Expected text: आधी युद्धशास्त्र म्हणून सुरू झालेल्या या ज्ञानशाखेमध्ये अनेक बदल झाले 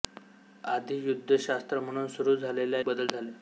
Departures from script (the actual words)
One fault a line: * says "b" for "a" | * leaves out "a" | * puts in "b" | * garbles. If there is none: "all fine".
* leaves out "या ज्ञानशाखेमध्ये अनेक"